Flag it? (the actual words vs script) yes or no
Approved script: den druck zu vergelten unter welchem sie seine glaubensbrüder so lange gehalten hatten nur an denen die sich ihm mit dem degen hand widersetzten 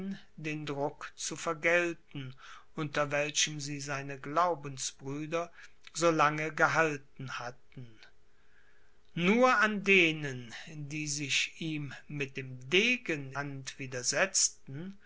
no